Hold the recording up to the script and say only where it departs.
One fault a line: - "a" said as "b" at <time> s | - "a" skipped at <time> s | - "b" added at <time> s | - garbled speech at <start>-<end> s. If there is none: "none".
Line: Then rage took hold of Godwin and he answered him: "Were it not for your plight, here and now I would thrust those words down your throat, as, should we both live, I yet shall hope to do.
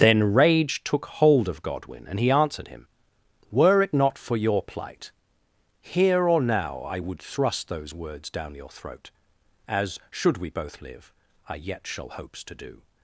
- "and" said as "or" at 6.3 s
- "hope" said as "hopes" at 12.1 s